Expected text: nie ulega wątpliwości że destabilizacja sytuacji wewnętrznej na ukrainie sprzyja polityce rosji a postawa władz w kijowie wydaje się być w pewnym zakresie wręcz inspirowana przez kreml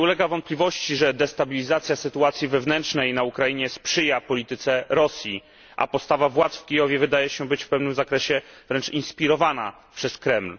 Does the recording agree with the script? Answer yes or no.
yes